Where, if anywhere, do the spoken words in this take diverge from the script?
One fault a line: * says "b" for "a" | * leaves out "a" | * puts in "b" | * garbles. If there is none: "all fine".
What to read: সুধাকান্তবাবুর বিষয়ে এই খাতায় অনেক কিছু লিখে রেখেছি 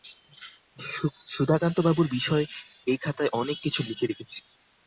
all fine